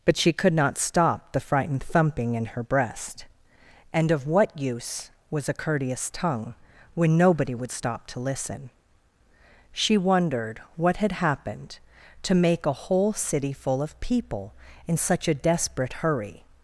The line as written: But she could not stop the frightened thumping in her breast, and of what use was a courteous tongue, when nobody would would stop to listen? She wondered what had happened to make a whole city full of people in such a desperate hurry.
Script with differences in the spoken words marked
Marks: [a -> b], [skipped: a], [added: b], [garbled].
But she could not stop the frightened thumping in her breast, and of what use was a courteous tongue, when nobody would [skipped: would] stop to listen? She wondered what had happened to make a whole city full of people in such a desperate hurry.